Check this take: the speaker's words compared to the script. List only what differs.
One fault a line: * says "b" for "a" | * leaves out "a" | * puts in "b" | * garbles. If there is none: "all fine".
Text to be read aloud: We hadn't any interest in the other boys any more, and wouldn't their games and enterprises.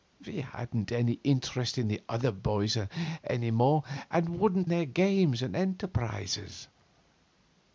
all fine